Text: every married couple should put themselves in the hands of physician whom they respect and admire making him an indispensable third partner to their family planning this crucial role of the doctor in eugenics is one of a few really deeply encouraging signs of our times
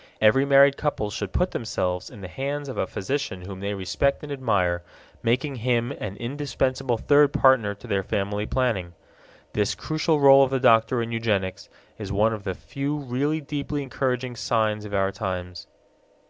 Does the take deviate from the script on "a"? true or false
true